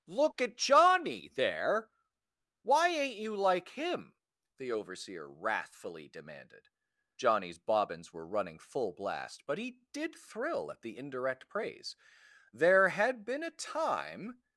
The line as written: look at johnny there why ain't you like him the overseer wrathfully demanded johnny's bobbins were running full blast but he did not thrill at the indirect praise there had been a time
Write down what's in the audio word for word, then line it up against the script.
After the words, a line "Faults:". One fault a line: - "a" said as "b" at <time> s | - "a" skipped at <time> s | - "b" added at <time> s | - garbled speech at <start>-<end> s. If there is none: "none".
look at johnny there why ain't you like him the overseer wrathfully demanded johnny's bobbins were running full blast but he did thrill at the indirect praise there had been a time
Faults:
- "not" skipped at 10.1 s